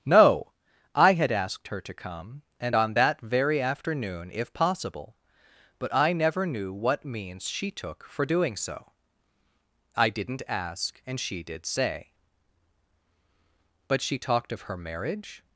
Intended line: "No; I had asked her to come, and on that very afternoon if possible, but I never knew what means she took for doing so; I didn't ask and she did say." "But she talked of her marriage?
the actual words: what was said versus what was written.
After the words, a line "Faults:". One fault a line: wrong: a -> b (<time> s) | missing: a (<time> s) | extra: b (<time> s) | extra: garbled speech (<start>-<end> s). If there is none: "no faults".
"No; I had asked her to come, and on that very afternoon if possible, but I never knew what means she took for doing so; I didn't ask and she did say." "But she talked of her marriage?
Faults:
no faults